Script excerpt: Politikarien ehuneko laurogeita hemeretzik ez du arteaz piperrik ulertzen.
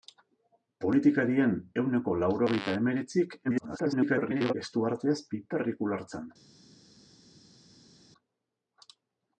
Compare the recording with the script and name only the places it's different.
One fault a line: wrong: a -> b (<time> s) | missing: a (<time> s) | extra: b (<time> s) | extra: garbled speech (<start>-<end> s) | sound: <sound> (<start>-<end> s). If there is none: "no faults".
extra: garbled speech (3.4-4.5 s)